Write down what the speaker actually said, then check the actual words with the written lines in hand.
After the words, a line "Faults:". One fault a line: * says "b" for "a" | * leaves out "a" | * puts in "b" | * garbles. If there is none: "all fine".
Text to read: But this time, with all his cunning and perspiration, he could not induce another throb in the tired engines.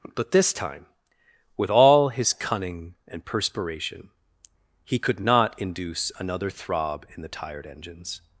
But this time, with all his cunning and perspiration, he could not induce another throb in the tired engines.
Faults:
all fine